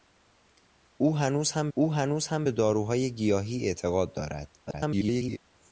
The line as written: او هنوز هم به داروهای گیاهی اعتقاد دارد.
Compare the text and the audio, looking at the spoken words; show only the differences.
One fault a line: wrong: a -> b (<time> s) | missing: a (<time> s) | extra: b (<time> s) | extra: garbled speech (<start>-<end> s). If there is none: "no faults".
extra: او هنوز هم (1.7 s)
extra: garbled speech (4.7-5.4 s)